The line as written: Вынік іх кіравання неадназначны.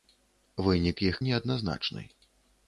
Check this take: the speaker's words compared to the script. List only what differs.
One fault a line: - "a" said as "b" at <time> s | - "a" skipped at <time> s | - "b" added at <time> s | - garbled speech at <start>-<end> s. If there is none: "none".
- "кіравання" skipped at 1.2 s